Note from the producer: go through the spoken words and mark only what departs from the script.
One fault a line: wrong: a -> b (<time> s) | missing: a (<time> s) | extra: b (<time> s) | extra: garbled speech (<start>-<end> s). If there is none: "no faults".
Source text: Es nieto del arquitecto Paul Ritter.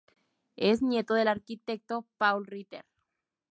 no faults